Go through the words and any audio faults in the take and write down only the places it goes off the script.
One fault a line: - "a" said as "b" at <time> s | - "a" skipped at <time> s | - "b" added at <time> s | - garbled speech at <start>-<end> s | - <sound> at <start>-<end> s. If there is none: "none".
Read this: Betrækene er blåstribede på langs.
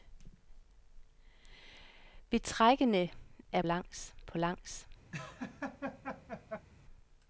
- "blåstribede" said as "langs" at 3.6 s
- laugh at 5.1-6.7 s